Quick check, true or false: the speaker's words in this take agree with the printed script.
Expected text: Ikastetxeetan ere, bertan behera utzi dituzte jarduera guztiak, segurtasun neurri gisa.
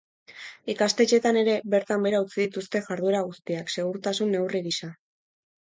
true